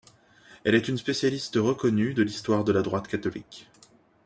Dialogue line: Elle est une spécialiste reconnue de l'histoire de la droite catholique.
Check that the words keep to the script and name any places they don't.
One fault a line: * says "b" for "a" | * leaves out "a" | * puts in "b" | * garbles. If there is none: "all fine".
all fine